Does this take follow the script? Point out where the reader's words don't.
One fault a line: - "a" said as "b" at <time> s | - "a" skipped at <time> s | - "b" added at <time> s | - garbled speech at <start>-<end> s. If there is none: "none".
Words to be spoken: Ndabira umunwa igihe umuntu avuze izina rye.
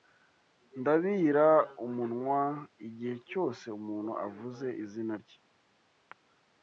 - "cyose" added at 3.3 s